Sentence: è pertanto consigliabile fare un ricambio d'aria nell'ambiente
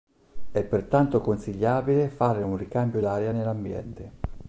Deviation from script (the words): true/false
false